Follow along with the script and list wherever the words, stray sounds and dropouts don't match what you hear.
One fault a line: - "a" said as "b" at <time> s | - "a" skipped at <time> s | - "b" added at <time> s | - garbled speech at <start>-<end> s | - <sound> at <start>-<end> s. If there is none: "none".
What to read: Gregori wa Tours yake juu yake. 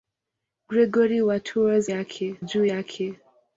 none